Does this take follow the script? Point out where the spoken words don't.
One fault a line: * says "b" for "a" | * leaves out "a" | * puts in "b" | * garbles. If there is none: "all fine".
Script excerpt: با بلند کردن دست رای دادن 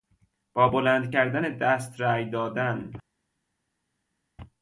all fine